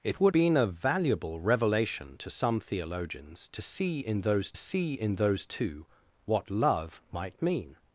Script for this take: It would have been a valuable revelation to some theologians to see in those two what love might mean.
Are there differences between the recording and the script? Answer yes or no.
yes